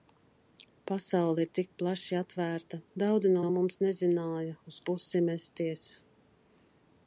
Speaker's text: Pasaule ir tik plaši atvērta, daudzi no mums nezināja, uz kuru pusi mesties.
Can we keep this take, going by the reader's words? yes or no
no